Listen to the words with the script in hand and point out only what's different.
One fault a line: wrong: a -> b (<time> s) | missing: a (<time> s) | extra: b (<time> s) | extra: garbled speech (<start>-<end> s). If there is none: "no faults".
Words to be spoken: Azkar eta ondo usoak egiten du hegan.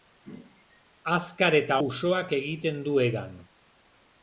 missing: ondo (1.8 s)